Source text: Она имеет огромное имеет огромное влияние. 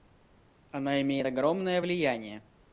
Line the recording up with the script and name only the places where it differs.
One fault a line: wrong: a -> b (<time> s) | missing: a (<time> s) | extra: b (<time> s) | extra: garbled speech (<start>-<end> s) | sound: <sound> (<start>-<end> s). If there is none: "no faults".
missing: имеет огромное (1.8 s)